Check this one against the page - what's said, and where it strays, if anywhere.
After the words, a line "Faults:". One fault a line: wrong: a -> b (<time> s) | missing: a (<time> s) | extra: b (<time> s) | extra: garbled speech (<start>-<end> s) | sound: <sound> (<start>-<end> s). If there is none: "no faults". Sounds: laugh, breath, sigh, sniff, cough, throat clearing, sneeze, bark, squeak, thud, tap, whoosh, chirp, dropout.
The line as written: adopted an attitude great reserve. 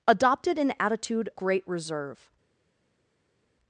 adopted an attitude great reserve.
Faults:
no faults